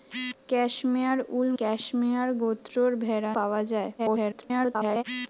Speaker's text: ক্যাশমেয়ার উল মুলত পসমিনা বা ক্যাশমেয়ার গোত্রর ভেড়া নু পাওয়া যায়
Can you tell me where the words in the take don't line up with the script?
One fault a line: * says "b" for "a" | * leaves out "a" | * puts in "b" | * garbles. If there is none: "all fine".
* leaves out "মুলত পসমিনা বা"
* leaves out "নু"
* garbles